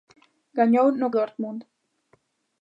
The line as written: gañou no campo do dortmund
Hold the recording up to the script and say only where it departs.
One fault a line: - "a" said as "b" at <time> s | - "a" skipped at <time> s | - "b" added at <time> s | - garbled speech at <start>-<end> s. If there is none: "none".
- "campo do" skipped at 1.1 s